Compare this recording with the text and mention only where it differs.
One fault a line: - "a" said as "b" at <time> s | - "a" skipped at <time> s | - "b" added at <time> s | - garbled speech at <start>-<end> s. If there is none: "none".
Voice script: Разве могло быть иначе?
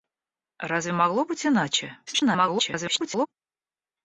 - garbled speech at 2.1-3.3 s